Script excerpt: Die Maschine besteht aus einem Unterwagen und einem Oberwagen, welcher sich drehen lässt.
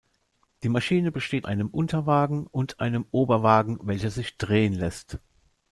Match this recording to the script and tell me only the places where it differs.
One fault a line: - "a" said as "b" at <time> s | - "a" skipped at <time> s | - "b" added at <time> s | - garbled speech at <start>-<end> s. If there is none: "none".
- "aus" skipped at 1.5 s